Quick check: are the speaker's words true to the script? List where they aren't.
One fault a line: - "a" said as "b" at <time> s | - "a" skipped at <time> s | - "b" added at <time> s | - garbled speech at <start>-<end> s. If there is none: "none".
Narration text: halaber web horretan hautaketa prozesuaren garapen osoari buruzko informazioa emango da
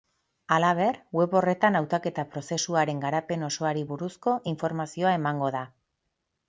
none